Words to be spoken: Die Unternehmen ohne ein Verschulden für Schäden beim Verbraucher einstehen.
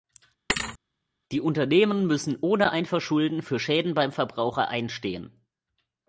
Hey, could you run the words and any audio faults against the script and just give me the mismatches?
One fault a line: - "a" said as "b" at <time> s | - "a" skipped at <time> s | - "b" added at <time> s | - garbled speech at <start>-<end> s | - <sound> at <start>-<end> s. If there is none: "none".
- thud at 0.5-0.8 s
- "müssen" added at 2.1 s